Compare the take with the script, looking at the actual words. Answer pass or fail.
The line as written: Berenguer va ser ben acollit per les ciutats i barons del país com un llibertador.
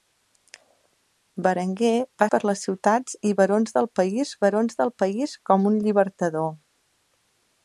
fail